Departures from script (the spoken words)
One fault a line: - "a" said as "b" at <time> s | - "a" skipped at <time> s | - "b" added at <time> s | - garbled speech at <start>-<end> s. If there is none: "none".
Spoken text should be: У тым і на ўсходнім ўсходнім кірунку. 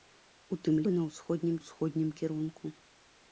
none